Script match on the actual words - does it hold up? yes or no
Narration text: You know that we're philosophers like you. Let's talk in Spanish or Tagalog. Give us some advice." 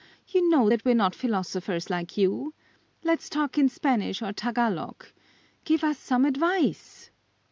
no